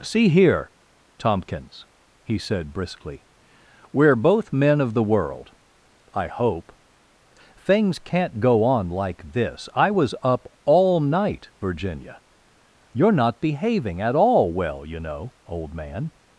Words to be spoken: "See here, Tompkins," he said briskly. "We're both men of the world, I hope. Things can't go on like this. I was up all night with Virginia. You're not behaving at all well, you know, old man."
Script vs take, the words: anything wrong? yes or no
yes